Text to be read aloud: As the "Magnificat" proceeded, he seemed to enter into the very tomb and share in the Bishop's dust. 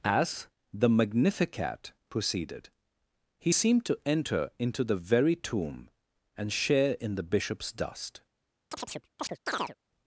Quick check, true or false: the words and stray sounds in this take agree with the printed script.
false